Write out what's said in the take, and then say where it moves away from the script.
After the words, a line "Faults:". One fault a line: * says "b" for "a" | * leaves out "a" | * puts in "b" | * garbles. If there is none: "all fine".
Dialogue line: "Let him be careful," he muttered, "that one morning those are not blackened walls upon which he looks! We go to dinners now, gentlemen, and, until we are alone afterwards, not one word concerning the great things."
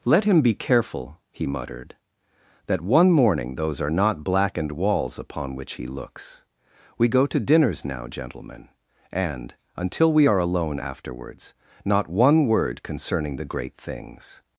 "Let him be careful," he muttered, "that one morning those are not blackened walls upon which he looks! We go to dinners now, gentlemen, and, until we are alone afterwards, not one word concerning the great things."
Faults:
all fine